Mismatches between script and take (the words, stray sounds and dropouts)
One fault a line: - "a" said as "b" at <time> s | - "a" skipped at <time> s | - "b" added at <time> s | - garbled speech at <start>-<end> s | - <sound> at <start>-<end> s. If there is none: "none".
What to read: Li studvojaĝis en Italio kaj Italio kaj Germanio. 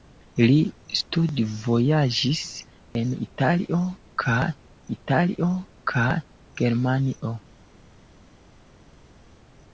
none